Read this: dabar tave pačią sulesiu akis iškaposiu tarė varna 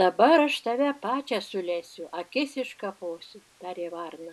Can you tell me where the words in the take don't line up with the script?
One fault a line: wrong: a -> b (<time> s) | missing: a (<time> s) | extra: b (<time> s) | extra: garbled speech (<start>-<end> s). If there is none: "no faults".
extra: aš (0.4 s)